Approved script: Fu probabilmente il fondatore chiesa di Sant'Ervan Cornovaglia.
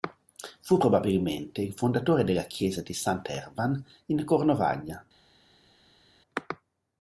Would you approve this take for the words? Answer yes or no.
no